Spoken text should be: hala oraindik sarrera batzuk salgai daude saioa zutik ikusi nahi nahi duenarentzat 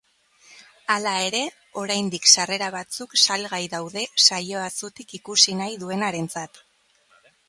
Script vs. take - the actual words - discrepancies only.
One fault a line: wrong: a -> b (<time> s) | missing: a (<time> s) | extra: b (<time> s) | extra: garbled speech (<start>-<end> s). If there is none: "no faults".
extra: ere (1.2 s)
missing: nahi (5.8 s)